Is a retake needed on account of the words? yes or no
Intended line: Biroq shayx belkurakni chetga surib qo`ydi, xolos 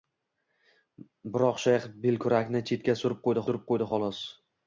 yes